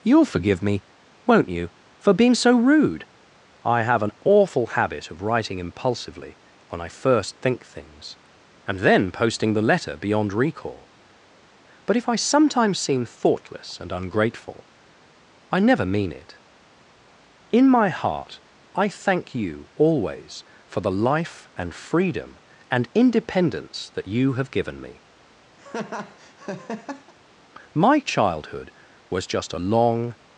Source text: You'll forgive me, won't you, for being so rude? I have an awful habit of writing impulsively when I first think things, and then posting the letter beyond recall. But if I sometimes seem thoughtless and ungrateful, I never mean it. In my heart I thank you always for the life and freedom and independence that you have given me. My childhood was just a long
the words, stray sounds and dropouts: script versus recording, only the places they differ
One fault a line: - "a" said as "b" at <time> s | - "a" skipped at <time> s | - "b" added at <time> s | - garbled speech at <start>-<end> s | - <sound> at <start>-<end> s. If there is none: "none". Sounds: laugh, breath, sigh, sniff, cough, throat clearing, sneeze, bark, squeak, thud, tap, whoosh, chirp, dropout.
- laugh at 25.6-27.1 s